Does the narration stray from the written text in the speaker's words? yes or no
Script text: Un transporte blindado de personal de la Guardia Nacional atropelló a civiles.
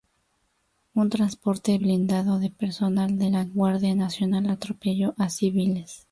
no